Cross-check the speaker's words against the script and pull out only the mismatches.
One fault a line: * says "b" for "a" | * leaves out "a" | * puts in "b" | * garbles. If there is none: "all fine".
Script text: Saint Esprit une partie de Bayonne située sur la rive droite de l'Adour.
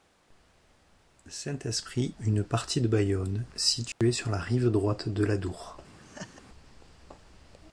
all fine